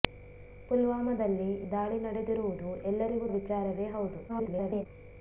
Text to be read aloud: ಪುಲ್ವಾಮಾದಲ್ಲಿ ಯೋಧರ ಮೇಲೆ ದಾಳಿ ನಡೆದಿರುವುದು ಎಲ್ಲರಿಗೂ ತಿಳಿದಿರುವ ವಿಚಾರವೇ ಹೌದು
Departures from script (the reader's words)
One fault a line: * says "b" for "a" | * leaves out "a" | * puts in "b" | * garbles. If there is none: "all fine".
* leaves out "ಯೋಧರ ಮೇಲೆ"
* leaves out "ತಿಳಿದಿರುವ"
* garbles